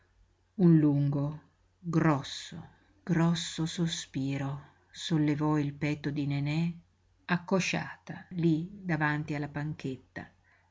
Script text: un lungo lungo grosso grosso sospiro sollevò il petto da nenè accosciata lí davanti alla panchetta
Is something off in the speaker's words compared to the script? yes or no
yes